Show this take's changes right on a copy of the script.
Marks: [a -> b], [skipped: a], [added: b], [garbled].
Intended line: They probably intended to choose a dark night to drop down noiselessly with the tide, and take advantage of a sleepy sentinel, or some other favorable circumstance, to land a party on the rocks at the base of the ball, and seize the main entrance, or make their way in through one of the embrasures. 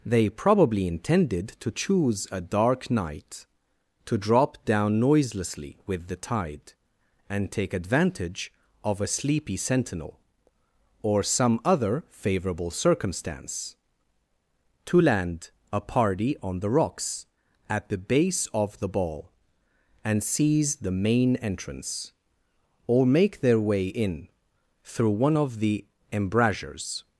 They probably intended to choose a dark night to drop down noiselessly with the tide, and take advantage of a sleepy sentinel, or some other favorable circumstance, to land a party on the rocks at the base of the ball, and seize the main entrance, or make their way in through one of the embrasures.